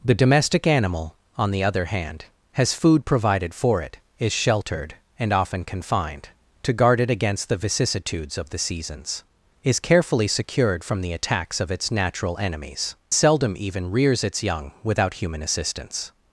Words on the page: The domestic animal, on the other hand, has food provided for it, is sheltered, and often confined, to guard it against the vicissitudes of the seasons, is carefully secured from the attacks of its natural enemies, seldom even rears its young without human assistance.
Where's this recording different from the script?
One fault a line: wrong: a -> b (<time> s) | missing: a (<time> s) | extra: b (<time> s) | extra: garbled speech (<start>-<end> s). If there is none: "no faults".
no faults